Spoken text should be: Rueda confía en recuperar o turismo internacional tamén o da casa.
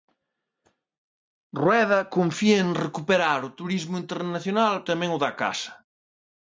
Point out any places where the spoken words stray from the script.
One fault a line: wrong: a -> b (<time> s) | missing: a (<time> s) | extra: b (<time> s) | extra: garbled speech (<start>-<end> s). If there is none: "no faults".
no faults